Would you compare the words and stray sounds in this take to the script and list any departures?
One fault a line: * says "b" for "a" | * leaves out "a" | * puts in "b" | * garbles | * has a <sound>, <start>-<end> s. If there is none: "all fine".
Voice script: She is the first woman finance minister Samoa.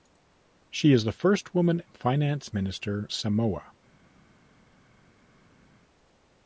all fine